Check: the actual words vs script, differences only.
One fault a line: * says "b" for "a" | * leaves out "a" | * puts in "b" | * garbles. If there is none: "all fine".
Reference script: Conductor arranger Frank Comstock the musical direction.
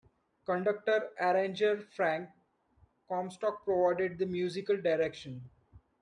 * puts in "provided"